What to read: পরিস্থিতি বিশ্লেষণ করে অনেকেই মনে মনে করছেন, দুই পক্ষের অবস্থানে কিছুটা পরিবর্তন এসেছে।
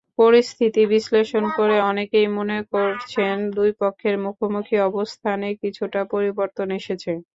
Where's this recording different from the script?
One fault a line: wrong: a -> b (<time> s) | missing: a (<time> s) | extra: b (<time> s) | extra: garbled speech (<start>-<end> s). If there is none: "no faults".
missing: মনে (2.6 s)
extra: মুখোমুখি (4.2 s)